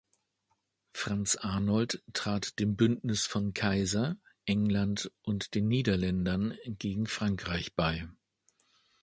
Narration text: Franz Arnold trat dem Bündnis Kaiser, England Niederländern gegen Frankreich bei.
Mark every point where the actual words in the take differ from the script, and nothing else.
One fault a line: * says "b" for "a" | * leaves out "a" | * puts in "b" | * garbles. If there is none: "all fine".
* puts in "von"
* puts in "und den"